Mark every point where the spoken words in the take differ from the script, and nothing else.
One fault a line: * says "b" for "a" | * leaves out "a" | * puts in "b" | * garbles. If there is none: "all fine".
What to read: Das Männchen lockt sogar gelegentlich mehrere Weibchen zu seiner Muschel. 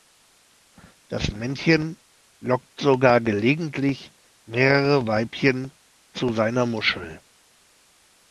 all fine